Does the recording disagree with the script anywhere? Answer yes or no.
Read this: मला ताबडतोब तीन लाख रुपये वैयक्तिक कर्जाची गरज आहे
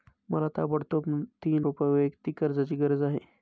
yes